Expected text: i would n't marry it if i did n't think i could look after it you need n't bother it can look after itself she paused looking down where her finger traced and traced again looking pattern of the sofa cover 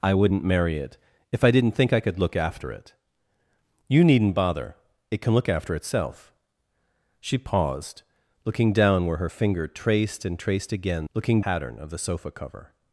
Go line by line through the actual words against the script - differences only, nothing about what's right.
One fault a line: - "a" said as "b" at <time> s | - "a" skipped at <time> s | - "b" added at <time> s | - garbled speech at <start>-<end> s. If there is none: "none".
none